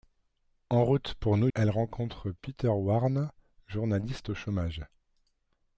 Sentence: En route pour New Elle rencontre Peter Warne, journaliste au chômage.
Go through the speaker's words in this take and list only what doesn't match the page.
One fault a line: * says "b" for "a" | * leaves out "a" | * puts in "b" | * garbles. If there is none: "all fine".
all fine